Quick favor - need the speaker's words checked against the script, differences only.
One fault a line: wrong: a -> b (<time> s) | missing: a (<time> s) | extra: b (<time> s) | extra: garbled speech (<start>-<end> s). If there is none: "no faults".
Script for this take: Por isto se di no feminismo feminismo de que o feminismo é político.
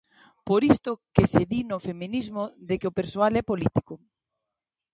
extra: que (1.1 s)
missing: feminismo (2.4 s)
wrong: feminismo -> persoal (3.0 s)